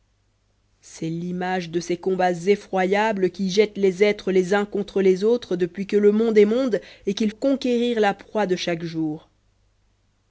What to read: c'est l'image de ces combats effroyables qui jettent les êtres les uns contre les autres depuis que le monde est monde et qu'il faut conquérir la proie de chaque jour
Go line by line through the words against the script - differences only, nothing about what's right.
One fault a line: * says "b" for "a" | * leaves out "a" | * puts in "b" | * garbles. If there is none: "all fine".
* leaves out "faut"